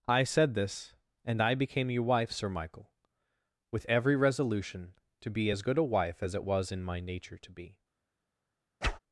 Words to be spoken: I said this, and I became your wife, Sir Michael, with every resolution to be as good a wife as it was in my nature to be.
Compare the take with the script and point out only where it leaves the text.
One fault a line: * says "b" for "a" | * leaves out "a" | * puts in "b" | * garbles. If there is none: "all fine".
all fine